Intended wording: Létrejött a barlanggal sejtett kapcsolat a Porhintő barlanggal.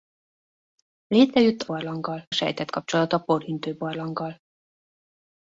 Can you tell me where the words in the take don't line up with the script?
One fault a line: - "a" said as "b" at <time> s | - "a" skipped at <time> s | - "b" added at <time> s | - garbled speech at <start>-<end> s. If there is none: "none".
none